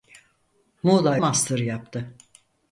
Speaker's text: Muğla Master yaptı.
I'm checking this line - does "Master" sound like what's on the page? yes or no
yes